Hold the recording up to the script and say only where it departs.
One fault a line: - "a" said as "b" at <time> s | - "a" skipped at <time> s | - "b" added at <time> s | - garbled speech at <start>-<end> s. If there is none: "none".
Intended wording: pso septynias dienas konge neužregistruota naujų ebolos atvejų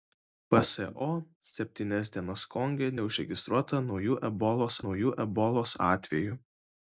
- "naujų ebolos" added at 4.8 s